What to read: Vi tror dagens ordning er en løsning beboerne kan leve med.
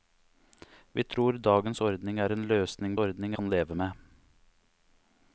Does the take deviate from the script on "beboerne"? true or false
true